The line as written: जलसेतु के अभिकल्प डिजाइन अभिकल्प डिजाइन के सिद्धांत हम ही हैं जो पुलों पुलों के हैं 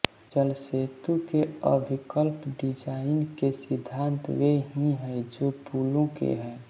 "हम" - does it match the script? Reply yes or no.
no